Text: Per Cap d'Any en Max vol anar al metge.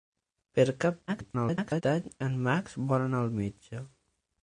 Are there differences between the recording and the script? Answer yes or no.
yes